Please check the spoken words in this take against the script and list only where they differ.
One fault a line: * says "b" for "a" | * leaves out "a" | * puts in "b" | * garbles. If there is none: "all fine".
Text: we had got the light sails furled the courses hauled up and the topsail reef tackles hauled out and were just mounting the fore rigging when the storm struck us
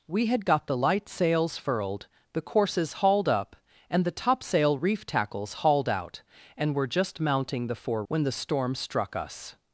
* leaves out "rigging"